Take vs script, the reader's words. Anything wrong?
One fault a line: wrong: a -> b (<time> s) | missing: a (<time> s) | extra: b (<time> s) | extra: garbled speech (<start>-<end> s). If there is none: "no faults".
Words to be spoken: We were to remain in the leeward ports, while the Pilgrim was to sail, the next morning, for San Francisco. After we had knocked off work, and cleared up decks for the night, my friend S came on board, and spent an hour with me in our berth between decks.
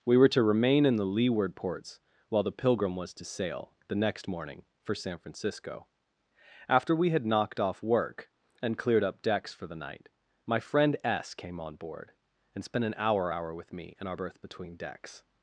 extra: hour (13.3 s)